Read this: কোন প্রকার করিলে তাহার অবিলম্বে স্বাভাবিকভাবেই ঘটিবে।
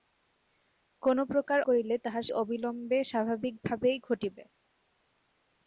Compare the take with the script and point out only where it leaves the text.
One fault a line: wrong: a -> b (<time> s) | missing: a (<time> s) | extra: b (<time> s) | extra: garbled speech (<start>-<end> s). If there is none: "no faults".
no faults